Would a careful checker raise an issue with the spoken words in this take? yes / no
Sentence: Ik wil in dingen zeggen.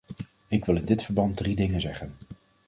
yes